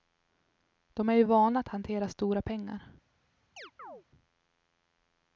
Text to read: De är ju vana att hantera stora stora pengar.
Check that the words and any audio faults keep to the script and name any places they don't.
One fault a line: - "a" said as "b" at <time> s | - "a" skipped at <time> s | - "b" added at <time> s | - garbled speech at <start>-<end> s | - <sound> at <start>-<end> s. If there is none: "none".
- "stora" skipped at 2.4 s
- chirp at 3.6-4.0 s